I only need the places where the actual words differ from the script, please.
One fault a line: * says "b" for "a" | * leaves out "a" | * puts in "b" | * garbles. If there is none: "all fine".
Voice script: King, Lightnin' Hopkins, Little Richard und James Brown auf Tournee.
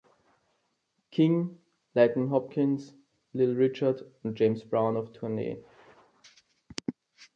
all fine